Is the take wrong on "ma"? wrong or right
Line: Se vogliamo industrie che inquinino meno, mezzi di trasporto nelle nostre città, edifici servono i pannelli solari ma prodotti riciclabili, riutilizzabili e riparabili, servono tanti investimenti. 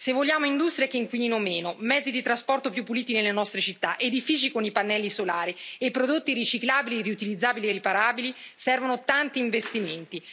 wrong